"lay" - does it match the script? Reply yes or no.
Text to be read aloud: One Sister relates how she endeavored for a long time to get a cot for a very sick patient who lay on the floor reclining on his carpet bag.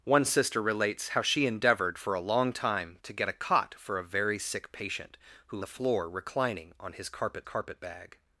no